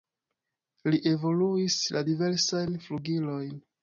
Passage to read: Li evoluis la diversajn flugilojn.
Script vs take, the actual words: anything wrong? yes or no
no